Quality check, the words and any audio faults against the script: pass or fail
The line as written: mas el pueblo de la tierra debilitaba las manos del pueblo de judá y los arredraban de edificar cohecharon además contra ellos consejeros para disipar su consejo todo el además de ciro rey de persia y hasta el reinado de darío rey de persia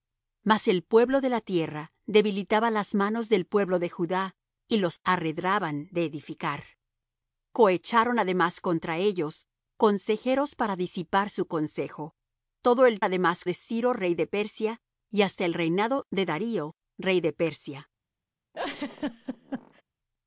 fail